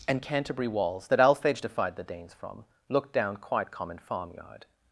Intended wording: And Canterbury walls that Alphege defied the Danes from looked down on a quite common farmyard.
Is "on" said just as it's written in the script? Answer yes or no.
no